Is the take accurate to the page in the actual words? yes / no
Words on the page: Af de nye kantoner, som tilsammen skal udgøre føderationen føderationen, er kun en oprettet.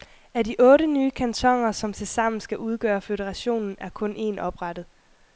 no